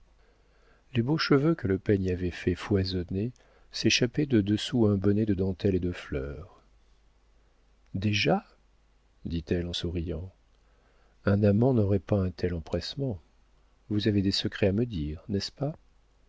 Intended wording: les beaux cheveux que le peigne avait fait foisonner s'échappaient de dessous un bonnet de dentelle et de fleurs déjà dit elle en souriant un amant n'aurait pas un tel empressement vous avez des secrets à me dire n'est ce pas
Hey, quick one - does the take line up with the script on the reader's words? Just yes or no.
yes